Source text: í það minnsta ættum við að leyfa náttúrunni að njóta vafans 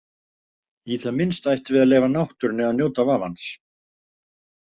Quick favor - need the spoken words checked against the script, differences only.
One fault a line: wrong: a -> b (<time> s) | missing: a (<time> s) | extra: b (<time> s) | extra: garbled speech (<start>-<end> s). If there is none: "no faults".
no faults